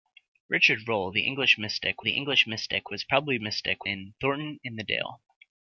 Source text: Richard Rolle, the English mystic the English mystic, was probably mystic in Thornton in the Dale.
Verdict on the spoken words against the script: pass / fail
pass